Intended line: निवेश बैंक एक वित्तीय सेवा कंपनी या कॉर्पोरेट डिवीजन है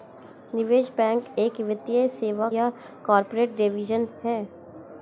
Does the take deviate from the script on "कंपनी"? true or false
true